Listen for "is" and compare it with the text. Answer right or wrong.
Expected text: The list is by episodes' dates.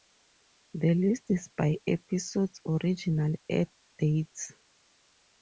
right